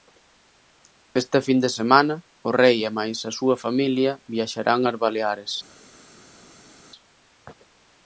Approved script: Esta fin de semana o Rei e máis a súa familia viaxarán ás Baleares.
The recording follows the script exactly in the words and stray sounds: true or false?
true